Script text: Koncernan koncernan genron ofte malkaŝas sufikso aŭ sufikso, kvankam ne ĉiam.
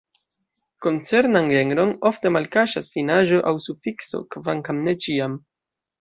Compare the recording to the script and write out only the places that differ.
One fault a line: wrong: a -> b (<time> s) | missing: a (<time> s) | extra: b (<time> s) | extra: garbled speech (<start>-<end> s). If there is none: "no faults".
missing: koncernan (1.5 s)
wrong: sufikso -> finaĵo (3.0 s)